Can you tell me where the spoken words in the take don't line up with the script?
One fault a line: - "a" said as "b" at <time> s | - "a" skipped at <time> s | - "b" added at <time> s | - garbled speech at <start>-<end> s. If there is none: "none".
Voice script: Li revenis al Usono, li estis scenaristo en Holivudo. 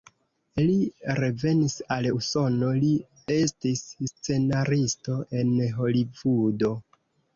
none